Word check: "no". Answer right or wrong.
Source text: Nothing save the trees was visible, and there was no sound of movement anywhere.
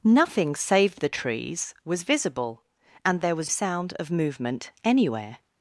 wrong